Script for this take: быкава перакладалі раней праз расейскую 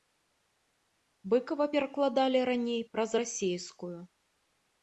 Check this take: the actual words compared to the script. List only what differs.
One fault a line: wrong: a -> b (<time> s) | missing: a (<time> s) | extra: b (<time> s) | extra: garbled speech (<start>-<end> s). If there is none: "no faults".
no faults